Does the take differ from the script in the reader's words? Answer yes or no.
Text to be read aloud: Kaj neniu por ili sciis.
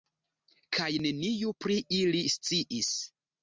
yes